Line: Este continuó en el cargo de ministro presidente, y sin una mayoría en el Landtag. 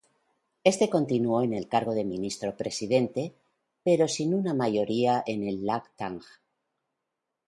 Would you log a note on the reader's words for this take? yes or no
yes